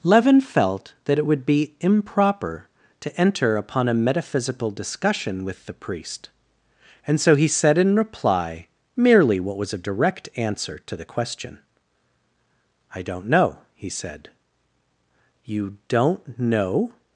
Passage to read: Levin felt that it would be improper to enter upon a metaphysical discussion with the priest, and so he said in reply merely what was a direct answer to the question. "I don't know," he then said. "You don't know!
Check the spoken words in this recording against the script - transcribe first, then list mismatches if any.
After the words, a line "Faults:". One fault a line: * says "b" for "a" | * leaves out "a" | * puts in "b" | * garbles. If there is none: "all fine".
Levin felt that it would be improper to enter upon a metaphysical discussion with the priest, and so he said in reply merely what was a direct answer to the question. "I don't know," he said. "You don't know!
Faults:
* leaves out "then"